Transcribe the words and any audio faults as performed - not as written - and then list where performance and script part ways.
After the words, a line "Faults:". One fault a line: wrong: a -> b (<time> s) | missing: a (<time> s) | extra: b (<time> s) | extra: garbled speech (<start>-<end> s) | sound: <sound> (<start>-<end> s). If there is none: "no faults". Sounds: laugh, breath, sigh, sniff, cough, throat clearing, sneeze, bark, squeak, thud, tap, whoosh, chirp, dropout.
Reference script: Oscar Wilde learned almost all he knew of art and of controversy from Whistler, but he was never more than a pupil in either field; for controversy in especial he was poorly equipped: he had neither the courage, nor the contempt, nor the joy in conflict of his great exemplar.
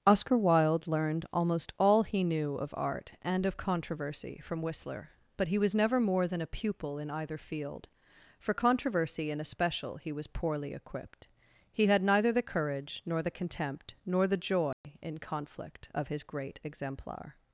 Oscar Wilde learned almost all he knew of art and of controversy from Whistler, but he was never more than a pupil in either field; for controversy in especial he was poorly equipped: he had neither the courage, nor the contempt, nor the joy in conflict of his great exemplar.
Faults:
sound: dropout (14.7-14.8 s)